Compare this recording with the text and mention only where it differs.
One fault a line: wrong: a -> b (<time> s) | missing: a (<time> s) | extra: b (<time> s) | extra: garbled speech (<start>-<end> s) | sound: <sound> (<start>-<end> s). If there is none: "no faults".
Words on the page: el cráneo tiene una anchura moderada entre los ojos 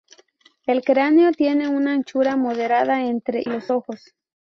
no faults